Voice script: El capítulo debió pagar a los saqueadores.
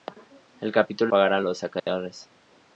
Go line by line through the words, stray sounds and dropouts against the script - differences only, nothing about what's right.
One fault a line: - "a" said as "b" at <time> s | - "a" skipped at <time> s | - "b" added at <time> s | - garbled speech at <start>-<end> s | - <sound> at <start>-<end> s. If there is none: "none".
- "debió" skipped at 1.1 s
- dropout at 1.8-1.9 s